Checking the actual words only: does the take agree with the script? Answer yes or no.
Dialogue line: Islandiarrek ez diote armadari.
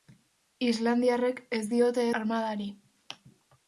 yes